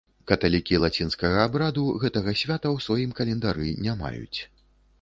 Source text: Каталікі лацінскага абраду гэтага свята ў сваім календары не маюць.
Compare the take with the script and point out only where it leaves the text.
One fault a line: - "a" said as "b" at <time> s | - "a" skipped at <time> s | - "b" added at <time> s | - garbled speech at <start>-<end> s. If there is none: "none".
none